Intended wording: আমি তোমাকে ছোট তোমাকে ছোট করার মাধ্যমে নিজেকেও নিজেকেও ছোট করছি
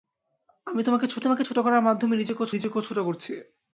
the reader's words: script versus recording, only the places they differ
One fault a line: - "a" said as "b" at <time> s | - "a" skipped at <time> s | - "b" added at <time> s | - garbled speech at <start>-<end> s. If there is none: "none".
none